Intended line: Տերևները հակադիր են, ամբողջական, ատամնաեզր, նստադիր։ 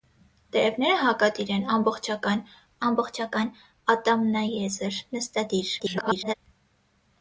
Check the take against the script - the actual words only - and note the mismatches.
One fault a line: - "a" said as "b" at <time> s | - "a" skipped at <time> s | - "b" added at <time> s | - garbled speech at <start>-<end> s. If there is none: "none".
- "ամբողջական" added at 2.9 s
- garbled speech at 5.8-6.3 s